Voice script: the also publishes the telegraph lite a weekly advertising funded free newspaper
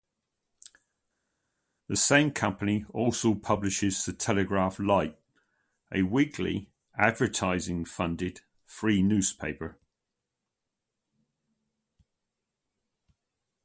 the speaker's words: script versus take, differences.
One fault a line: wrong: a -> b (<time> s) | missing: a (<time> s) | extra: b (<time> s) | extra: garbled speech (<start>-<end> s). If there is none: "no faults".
extra: same company (1.9 s)